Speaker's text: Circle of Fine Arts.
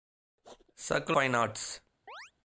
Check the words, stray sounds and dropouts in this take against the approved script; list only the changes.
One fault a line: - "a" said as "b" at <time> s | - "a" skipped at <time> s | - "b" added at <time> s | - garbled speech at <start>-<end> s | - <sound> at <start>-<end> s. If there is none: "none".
- "of" skipped at 1.2 s
- chirp at 2.1-2.3 s